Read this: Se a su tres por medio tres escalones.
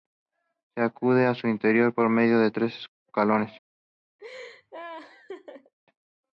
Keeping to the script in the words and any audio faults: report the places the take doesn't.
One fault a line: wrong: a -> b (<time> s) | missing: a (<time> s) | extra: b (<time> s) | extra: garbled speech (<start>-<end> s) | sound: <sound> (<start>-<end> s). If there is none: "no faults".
extra: accede (0.8 s)
wrong: tres -> interior (1.5 s)
extra: de (2.4 s)
sound: laugh (4.2-5.7 s)